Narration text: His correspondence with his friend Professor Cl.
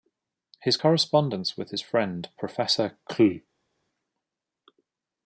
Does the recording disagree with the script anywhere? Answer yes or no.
no